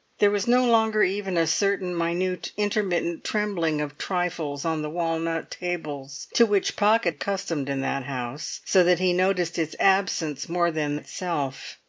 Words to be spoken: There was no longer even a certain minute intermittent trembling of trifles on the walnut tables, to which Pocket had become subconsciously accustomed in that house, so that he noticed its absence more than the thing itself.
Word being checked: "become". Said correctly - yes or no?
no